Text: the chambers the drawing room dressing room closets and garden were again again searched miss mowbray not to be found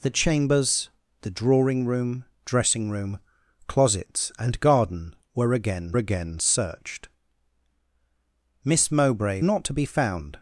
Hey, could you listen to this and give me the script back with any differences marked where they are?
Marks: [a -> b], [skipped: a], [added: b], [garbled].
the chambers the drawing room dressing room closets and garden were again again searched miss mowbray not to be found